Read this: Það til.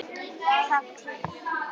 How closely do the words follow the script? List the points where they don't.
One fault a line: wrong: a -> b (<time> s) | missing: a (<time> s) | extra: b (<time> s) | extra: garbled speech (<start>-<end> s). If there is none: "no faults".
no faults